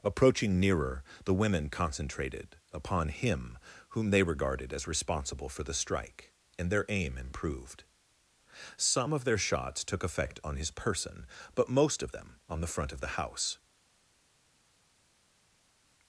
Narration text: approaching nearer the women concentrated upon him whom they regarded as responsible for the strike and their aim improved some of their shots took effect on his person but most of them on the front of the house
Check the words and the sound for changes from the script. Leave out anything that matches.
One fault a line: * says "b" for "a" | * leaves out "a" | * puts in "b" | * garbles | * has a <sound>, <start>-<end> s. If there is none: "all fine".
all fine